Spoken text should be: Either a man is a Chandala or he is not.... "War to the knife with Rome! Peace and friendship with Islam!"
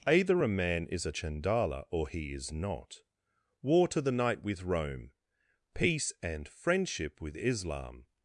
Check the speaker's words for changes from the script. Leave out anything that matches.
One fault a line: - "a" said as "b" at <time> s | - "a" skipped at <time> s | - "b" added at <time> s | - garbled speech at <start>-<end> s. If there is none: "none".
- "knife" said as "night" at 4.1 s